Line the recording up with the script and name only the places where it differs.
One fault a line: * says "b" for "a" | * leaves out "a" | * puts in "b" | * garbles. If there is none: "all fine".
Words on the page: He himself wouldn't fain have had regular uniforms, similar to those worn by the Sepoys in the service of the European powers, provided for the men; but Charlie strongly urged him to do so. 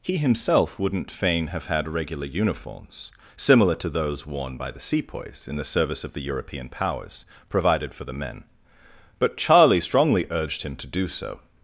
all fine